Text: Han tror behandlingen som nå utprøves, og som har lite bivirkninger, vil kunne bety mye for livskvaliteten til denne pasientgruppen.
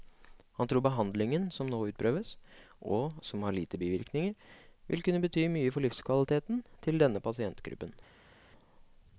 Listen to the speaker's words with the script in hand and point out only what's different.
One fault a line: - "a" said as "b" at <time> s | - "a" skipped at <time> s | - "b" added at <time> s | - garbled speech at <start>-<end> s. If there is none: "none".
none